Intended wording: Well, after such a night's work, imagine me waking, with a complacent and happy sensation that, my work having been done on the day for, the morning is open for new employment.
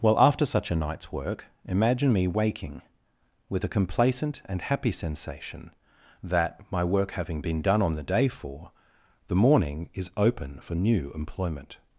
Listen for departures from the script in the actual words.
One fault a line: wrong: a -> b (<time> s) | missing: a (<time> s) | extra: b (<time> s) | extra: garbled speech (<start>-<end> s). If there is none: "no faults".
no faults